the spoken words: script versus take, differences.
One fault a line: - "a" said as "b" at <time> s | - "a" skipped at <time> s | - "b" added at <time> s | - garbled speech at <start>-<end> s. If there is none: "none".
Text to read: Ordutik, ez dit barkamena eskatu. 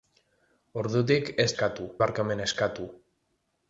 - "dit" said as "eskatu" at 1.5 s